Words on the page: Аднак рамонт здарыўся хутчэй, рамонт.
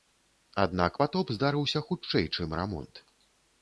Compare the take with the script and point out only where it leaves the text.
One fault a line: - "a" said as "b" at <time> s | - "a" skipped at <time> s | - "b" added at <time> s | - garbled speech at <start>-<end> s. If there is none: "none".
- "рамонт" said as "патоп" at 1.0 s
- "чым" added at 2.3 s